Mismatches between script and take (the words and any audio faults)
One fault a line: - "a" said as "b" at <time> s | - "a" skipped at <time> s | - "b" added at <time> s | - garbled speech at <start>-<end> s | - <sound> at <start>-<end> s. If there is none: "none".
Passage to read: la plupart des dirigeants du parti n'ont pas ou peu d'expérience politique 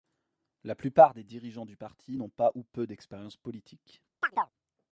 - chirp at 4.2-4.5 s